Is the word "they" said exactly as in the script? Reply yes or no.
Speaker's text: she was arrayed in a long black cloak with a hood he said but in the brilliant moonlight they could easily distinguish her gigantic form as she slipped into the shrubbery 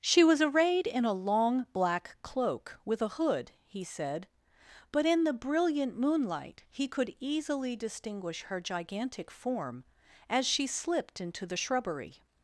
no